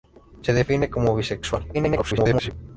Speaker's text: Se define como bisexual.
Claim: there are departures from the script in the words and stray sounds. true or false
true